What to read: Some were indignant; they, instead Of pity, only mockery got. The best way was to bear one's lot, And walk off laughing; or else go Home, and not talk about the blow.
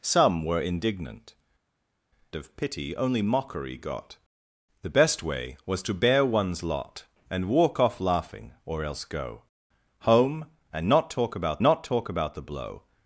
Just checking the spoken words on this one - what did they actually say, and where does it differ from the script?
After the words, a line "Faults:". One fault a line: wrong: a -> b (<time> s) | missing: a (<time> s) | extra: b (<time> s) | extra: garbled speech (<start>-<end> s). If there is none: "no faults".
Some were indignant; Of pity, only mockery got. The best way was to bear one's lot, And walk off laughing; or else go Home, and not talk about not talk about the blow.
Faults:
missing: they instead (1.4 s)
extra: not talk about (11.6 s)